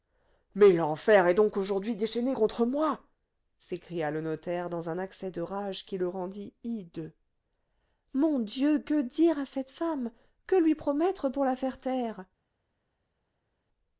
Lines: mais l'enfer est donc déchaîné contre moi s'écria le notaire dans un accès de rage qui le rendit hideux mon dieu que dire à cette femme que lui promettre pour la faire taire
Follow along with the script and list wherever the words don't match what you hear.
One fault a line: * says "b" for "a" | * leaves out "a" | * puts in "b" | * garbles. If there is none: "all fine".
* puts in "aujourd'hui"